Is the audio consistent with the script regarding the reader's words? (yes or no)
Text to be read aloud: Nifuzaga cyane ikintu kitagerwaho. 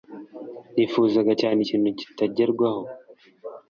yes